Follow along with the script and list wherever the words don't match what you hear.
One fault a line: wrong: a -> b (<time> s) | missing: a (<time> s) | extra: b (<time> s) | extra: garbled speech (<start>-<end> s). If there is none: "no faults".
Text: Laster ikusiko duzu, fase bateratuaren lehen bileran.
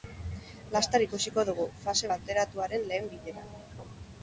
wrong: duzu -> dugu (1.5 s)